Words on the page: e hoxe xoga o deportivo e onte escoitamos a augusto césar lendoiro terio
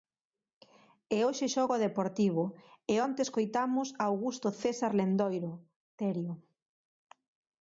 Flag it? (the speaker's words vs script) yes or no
no